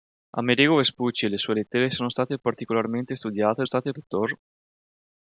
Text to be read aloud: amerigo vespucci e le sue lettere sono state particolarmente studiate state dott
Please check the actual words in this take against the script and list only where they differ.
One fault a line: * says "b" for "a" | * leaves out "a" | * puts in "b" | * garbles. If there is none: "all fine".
all fine